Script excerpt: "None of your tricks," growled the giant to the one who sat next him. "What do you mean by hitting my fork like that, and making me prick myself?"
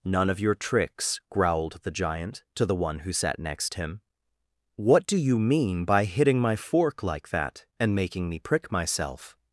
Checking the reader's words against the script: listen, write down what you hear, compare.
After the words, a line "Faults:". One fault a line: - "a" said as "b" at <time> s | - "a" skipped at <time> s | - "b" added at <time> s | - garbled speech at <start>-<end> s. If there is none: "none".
"None of your tricks," growled the giant to the one who sat next him. "What do you mean by hitting my fork like that, and making me prick myself?"
Faults:
none